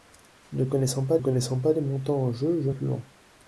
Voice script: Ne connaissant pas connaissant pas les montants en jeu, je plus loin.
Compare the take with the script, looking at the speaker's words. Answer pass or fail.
pass